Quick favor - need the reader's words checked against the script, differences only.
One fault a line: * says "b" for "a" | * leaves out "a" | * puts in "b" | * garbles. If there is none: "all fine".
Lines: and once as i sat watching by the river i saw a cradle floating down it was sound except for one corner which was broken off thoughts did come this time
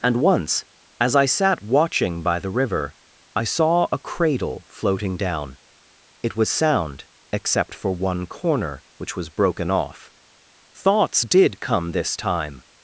all fine